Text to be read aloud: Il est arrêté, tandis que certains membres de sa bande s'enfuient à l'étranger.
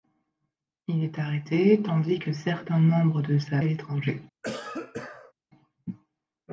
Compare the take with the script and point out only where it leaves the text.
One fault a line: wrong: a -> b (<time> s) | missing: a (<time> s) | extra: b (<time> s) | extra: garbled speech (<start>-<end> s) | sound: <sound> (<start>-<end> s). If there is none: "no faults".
missing: bande s'enfuient (3.6 s)
sound: cough (4.4-5.3 s)